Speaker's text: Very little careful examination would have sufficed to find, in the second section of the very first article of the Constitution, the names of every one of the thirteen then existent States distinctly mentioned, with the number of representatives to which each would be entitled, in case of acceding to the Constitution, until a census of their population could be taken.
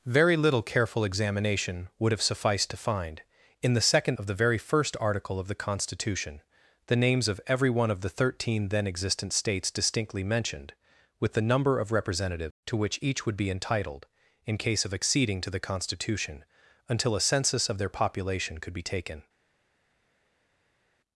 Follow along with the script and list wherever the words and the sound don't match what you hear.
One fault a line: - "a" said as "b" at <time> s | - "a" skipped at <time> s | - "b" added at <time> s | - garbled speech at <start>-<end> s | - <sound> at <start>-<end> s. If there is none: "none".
- "section" skipped at 4.2 s